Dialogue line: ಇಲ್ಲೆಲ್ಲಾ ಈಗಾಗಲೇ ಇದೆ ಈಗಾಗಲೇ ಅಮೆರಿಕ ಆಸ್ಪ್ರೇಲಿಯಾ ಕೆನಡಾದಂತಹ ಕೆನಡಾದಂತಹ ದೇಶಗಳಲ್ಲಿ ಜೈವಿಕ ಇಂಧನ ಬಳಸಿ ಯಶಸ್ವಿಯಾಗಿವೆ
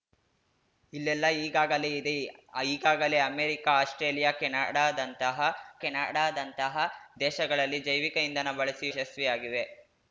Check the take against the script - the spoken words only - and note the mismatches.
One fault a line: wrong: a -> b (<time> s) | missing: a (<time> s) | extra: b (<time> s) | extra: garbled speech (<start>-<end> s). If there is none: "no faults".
no faults